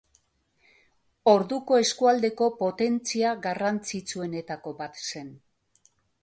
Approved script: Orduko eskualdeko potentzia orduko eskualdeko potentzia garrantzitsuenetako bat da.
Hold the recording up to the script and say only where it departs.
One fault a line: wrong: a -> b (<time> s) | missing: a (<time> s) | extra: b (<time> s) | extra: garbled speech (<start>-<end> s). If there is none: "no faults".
missing: orduko eskualdeko potentzia (3.4 s)
wrong: da -> zen (5.0 s)